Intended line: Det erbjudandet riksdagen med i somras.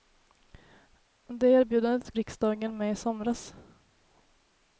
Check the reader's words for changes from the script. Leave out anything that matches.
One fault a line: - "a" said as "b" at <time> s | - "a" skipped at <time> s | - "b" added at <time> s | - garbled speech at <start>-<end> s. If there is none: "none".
none